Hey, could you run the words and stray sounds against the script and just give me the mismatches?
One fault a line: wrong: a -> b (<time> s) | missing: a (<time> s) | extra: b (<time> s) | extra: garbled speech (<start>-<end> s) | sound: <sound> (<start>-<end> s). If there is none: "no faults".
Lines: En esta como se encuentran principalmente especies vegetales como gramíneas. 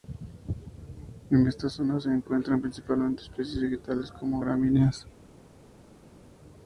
wrong: como -> zona (1.7 s)